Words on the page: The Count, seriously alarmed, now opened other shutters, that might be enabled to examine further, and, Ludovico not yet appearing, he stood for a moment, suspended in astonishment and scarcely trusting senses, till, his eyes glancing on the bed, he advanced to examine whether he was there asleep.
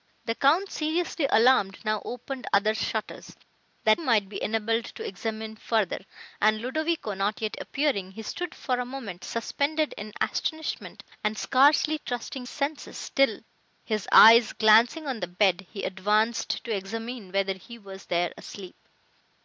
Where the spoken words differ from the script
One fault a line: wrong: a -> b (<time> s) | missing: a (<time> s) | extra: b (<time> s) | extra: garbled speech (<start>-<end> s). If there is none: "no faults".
no faults